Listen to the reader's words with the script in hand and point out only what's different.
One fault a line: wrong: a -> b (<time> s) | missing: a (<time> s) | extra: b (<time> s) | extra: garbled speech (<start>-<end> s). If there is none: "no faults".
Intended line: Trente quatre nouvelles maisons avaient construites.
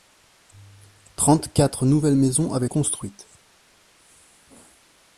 no faults